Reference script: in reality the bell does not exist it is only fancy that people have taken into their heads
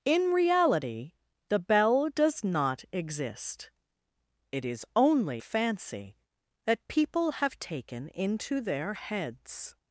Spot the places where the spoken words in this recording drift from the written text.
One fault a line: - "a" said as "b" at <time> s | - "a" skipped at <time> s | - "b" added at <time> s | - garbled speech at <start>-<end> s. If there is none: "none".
none